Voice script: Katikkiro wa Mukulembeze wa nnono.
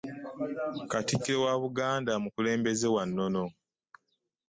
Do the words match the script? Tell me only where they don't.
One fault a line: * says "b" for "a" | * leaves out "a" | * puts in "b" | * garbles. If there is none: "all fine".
* puts in "Buganda"